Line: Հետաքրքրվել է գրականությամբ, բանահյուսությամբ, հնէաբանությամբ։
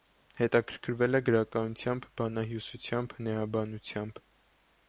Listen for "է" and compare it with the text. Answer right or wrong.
right